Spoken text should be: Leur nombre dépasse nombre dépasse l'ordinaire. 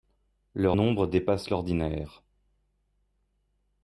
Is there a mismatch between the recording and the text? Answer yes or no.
yes